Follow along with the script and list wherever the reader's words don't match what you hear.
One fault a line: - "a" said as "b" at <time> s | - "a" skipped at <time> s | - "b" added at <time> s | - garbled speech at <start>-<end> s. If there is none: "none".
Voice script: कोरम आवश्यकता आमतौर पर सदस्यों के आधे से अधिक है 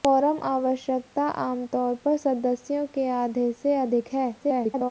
- garbled speech at 4.4-4.9 s